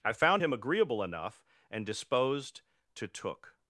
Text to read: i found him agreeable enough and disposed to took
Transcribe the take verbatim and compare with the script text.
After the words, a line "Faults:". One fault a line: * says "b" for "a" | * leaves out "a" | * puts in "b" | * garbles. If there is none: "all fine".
i found him agreeable enough and disposed to took
Faults:
all fine